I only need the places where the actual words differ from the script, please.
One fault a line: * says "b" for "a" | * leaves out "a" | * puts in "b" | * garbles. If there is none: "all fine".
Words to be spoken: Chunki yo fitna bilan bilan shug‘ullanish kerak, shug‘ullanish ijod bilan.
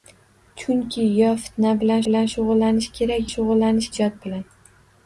all fine